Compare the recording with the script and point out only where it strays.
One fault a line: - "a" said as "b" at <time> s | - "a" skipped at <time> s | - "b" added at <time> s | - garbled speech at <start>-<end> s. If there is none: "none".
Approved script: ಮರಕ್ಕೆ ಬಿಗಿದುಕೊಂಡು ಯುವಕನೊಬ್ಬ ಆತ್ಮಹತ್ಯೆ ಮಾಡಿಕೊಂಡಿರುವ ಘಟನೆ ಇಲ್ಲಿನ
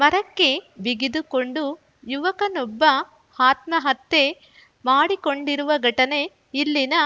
none